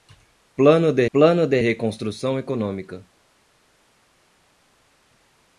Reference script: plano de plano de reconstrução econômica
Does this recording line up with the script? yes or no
yes